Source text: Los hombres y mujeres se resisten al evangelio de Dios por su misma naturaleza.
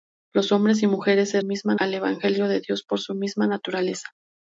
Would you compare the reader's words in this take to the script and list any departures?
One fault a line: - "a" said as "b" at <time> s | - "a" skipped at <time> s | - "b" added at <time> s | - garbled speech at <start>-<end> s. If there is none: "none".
- "resisten" said as "misma" at 1.4 s